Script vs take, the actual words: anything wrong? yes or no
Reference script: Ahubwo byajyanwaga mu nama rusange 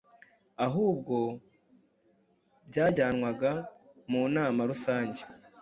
no